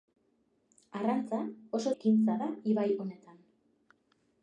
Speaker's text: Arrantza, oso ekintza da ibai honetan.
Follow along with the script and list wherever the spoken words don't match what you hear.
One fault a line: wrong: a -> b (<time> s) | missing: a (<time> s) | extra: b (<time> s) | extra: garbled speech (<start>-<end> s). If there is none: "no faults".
no faults